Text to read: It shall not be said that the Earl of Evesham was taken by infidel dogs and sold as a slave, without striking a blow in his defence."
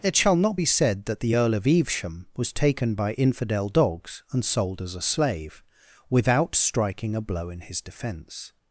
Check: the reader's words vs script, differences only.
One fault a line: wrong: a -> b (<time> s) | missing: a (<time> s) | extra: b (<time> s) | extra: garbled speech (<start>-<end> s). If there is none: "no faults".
no faults